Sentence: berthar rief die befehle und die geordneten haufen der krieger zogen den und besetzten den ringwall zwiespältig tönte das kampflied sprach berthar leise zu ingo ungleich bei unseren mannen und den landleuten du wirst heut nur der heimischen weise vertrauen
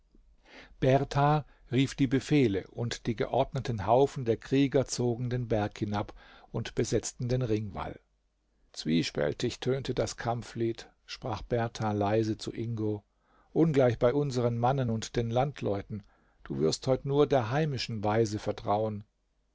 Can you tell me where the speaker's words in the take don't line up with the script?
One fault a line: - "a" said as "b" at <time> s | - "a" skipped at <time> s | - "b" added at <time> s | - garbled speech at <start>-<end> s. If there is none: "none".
- "berg hinab" added at 5.5 s